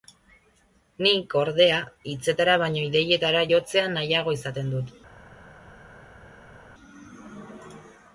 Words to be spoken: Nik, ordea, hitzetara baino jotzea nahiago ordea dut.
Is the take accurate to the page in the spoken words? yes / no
no